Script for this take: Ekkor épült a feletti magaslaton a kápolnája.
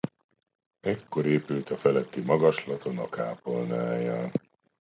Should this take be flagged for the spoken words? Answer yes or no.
no